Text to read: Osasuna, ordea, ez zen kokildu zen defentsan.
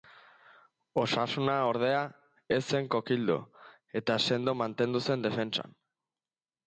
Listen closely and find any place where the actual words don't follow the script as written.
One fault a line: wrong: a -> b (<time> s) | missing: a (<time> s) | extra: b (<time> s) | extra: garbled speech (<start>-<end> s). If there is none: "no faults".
extra: eta sendo mantendu (4.0 s)